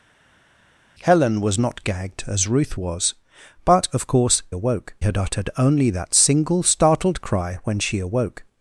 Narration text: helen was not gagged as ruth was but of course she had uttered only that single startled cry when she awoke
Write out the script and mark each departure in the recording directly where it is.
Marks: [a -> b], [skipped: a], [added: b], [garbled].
helen was not gagged as ruth was but of course [she -> awoke] had uttered only that single startled cry when she awoke